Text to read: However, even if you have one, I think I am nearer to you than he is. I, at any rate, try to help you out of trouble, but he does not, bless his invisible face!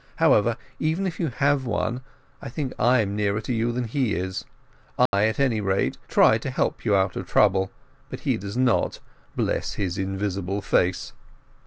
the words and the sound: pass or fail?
fail